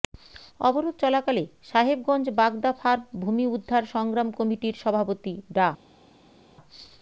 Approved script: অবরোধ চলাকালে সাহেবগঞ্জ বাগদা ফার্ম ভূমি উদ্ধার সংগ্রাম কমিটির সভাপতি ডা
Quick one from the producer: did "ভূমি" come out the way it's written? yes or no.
yes